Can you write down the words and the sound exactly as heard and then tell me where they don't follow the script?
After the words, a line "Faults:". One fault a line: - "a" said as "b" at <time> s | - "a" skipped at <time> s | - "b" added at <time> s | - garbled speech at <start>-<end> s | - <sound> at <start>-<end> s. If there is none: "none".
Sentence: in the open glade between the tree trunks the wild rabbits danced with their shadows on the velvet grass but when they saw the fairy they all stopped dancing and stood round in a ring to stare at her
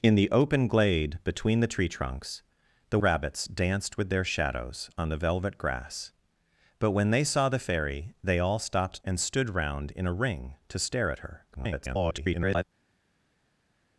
in the open glade between the tree trunks the rabbits danced with their shadows on the velvet grass but when they saw the fairy they all stopped and stood round in a ring to stare at her [garbled]
Faults:
- "wild" skipped at 3.0 s
- "dancing" skipped at 9.0 s
- garbled speech at 11.5-12.6 s